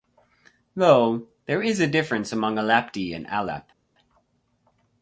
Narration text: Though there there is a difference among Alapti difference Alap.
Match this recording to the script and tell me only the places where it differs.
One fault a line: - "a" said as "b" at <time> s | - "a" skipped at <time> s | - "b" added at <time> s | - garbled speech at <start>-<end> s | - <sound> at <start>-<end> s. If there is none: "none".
- "there" skipped at 1.6 s
- "difference" said as "and" at 3.1 s